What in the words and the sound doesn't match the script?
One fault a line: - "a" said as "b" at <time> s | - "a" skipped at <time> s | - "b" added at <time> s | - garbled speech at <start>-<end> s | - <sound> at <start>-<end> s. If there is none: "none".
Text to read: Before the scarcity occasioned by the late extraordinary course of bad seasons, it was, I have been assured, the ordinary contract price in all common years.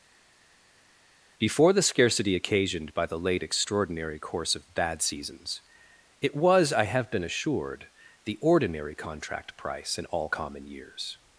none